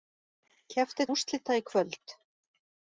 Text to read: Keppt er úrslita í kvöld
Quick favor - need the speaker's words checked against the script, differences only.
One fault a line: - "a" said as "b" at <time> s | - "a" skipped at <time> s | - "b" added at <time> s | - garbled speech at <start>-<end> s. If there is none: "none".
none